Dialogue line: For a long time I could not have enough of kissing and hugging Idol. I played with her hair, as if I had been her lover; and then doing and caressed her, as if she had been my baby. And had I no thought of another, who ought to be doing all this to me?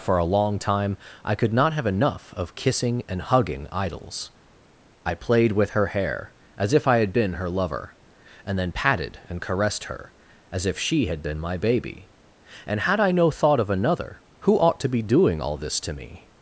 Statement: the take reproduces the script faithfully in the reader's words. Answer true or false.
false